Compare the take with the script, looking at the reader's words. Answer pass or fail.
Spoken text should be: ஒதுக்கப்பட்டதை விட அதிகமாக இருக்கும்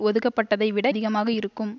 pass